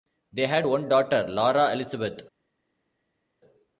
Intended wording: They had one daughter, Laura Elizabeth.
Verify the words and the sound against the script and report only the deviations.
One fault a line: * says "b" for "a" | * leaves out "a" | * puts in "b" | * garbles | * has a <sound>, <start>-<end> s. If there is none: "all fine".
all fine